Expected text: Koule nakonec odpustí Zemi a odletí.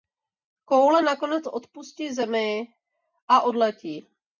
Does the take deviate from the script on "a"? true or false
false